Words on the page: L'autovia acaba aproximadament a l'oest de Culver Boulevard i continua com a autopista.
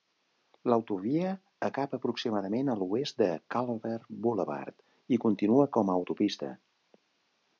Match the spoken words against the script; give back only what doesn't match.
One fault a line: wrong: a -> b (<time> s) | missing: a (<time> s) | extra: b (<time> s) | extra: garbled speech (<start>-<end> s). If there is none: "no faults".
no faults